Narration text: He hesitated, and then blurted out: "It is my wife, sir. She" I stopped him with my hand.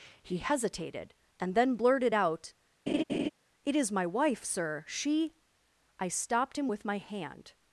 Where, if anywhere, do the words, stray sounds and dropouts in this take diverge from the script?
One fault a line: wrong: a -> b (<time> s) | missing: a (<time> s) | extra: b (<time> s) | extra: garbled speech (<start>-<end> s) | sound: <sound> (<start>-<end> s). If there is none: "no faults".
sound: laugh (2.9-3.3 s)